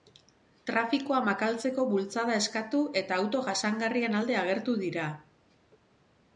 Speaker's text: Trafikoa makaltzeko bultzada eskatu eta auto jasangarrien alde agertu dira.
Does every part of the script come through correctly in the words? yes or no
yes